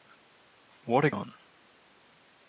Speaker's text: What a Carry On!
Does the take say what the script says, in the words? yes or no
no